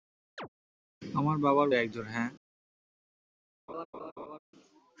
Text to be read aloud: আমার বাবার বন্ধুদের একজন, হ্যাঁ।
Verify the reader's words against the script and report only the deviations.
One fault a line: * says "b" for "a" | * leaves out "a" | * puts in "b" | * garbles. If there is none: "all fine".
* leaves out "বন্ধুদের"